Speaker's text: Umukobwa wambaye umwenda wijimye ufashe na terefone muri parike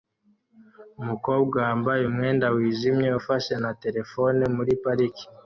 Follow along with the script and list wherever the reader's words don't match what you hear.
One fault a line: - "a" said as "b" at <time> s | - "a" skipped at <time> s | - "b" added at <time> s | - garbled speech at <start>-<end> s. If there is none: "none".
none